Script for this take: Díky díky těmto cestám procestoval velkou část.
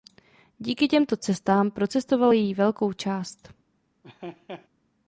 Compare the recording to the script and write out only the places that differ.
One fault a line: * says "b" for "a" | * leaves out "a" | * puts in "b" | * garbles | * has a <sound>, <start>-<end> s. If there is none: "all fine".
* leaves out "díky"
* puts in "její"
* has a laugh, 4.0-4.7 s